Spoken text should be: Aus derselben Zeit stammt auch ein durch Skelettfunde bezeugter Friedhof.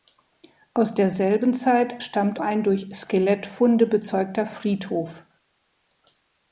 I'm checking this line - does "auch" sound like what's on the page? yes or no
no